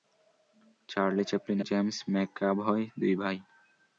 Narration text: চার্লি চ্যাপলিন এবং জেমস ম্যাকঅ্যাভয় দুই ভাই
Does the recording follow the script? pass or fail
fail